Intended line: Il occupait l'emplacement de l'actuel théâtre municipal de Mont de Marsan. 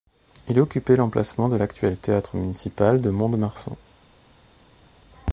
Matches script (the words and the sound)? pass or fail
pass